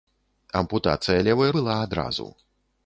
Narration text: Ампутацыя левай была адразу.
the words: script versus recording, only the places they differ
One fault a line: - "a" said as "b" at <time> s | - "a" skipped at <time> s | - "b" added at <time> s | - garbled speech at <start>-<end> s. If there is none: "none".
none